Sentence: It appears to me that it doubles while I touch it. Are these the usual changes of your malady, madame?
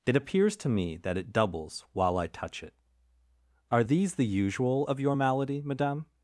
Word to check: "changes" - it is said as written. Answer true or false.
false